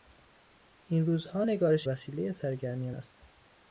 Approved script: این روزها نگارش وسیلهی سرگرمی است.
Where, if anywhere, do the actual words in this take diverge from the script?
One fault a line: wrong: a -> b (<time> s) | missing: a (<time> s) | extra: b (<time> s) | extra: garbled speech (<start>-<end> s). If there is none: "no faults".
no faults